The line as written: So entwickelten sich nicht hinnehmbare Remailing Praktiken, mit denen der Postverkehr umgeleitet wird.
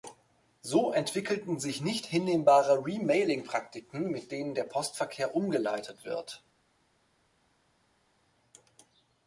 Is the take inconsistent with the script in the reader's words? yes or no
no